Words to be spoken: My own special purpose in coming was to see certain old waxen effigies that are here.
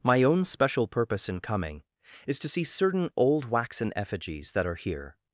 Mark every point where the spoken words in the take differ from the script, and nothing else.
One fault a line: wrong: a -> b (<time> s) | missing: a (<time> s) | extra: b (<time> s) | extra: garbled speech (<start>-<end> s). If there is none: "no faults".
wrong: was -> is (2.2 s)